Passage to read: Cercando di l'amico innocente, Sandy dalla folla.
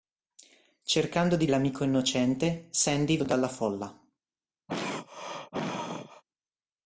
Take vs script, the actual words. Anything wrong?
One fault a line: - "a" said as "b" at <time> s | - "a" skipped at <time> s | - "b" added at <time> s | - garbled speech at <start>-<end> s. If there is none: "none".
none